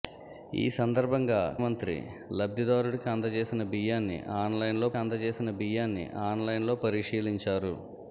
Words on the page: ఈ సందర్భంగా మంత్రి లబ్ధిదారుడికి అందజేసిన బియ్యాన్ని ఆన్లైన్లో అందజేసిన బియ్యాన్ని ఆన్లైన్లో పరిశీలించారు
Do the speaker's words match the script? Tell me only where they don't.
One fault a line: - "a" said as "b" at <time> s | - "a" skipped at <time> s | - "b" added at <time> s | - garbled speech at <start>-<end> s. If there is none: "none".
none